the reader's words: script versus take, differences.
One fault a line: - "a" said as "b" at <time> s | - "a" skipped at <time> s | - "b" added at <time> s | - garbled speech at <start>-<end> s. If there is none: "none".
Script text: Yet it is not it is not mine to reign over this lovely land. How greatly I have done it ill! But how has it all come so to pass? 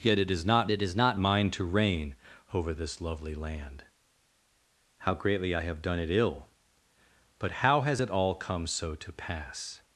none